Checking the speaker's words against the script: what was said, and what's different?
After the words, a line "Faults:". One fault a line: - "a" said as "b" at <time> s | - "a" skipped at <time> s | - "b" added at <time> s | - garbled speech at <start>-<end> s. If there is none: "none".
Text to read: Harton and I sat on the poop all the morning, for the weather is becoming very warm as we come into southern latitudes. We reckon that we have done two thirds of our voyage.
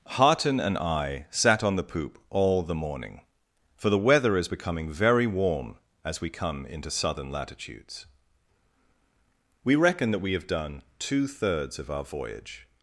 Harton and I sat on the poop all the morning, for the weather is becoming very warm as we come into southern latitudes. We reckon that we have done two thirds of our voyage.
Faults:
none